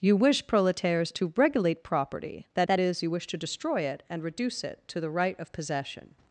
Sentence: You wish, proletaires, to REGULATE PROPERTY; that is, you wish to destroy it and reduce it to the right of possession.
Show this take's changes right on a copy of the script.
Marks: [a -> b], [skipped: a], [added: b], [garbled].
You wish, proletaires, to REGULATE PROPERTY; that [added: that] is, you wish to destroy it and reduce it to the right of possession.